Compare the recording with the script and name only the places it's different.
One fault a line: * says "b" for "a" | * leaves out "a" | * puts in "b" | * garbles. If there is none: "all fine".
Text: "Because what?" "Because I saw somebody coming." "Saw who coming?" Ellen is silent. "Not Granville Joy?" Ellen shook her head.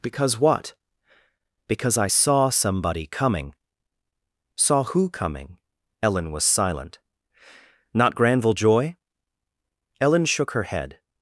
* says "was" for "is"